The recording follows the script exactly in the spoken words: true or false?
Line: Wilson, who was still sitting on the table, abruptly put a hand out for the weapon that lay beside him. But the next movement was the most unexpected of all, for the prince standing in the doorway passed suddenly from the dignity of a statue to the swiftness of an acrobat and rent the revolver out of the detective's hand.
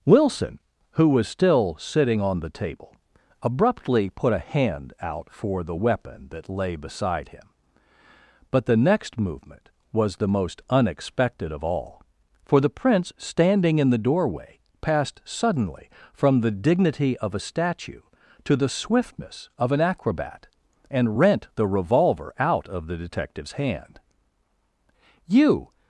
false